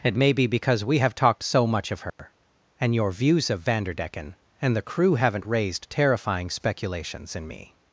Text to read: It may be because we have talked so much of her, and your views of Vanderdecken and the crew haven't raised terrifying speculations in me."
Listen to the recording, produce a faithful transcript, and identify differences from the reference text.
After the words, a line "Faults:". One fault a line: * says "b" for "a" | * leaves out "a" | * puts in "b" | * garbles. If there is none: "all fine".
It may be because we have talked so much of her, and your views of Vanderdecken and the crew haven't raised terrifying speculations in me."
Faults:
all fine